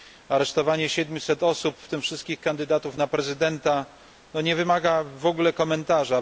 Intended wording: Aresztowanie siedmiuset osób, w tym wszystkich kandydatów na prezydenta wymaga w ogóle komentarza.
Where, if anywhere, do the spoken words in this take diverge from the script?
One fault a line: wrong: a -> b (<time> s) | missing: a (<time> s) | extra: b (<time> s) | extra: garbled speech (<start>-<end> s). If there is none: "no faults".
extra: nie (4.3 s)